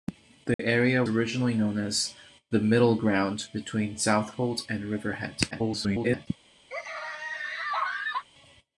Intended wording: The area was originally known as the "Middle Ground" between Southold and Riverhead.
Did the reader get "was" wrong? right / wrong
wrong